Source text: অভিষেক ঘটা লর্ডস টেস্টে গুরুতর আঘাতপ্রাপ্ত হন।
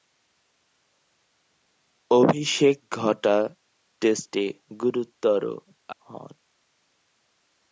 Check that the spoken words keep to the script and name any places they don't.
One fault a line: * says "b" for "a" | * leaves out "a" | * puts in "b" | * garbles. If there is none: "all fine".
* leaves out "লর্ডস"
* leaves out "আঘাতপ্রাপ্ত"